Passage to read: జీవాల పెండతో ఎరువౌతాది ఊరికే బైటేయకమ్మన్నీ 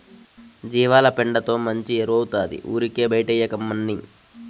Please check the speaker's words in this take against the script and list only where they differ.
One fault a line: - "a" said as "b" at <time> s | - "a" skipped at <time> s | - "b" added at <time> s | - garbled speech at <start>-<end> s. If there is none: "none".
- "మంచి" added at 1.6 s